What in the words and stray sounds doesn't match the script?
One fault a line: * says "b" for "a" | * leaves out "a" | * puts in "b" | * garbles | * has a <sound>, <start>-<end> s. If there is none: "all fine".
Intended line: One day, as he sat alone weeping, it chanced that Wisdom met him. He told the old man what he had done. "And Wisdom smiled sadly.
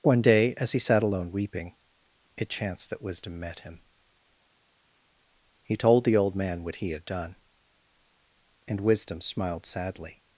all fine